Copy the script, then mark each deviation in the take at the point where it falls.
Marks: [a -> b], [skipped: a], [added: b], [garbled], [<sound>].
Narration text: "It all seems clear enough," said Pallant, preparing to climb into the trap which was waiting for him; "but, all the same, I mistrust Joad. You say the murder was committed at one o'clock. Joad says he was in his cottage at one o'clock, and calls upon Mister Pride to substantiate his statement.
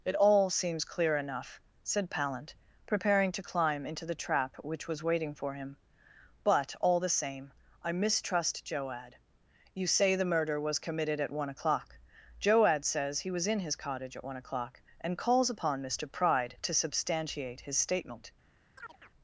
"It all seems clear enough," said Pallant, preparing to climb into the trap which was waiting for him; "but, all the same, I mistrust Joad. You say the murder was committed at one o'clock. Joad says he was in his cottage at one o'clock, and calls upon Mister Pride to substantiate his statement. [chirp]